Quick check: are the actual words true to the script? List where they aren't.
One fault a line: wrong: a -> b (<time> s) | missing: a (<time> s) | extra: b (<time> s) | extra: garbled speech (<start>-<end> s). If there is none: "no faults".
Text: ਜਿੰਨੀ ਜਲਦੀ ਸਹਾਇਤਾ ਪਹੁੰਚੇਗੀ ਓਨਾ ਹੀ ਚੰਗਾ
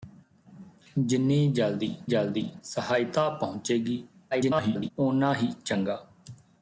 extra: ਜਲਦੀ (2.1 s)
extra: garbled speech (4.3-4.9 s)